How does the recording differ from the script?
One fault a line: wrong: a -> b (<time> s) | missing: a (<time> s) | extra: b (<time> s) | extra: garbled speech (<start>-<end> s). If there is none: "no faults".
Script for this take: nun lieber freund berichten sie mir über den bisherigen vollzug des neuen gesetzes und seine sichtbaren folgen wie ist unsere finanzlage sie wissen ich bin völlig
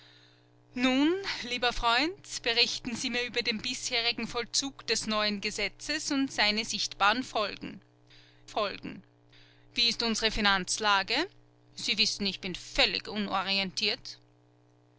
extra: folgen (8.5 s)